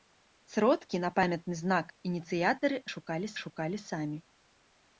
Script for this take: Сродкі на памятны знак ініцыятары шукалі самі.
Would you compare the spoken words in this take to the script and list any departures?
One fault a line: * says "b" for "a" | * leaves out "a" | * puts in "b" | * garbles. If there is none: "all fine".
* puts in "шукалі"